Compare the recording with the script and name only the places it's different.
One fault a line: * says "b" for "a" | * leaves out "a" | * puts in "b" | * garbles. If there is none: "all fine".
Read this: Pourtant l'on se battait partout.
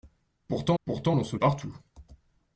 * puts in "pourtant"
* leaves out "battait"